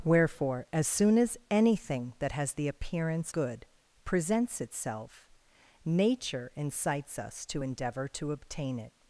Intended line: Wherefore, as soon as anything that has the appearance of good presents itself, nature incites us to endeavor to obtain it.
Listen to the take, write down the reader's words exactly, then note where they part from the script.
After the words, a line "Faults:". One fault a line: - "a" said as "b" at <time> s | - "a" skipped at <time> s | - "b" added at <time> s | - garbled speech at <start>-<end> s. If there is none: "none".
Wherefore, as soon as anything that has the appearance good presents itself, nature incites us to endeavor to obtain it.
Faults:
- "of" skipped at 3.3 s